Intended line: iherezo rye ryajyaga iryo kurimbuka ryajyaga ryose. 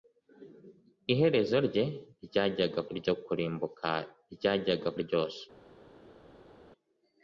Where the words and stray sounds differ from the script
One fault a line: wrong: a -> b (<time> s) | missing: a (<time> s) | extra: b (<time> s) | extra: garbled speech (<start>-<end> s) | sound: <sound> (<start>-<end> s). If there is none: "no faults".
no faults